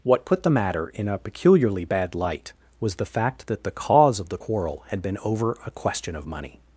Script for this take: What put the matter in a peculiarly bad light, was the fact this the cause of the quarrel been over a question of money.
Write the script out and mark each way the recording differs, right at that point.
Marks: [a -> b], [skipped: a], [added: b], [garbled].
What put the matter in a peculiarly bad light, was the fact [this -> that] the cause of the quarrel [added: had] been over a question of money.